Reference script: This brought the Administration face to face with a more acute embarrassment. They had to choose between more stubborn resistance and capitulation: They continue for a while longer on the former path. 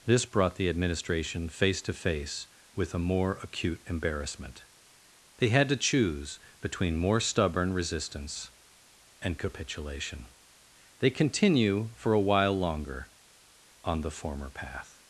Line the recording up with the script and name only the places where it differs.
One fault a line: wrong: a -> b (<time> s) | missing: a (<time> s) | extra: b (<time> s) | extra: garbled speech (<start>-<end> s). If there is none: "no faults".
no faults